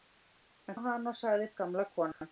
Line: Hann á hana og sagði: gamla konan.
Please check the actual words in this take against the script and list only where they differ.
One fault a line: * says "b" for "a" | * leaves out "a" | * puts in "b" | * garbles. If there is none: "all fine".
all fine